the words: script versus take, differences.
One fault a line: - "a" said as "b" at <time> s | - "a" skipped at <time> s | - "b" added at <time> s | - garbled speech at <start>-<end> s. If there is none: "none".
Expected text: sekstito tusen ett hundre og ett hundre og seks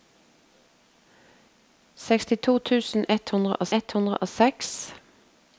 none